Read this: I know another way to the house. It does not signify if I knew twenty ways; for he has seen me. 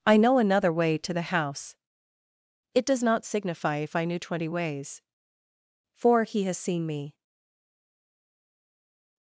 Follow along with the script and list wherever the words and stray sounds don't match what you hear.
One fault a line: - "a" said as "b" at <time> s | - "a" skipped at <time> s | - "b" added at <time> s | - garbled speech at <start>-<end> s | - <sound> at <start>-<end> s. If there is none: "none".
none